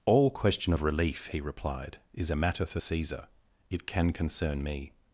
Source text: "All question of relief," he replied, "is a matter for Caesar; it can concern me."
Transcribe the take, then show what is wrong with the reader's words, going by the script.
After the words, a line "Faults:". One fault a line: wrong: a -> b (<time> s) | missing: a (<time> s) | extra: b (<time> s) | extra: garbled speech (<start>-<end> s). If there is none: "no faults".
"All question of relief," he replied, "is a matter for Caesar; it can concern me."
Faults:
no faults